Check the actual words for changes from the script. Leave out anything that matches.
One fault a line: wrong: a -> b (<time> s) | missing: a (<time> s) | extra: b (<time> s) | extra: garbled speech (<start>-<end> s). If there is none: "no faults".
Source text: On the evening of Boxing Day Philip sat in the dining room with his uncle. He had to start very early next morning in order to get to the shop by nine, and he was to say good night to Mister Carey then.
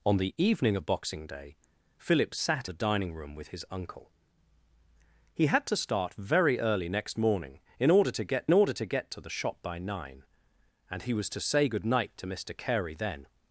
missing: in (2.7 s)
extra: order to get (8.5 s)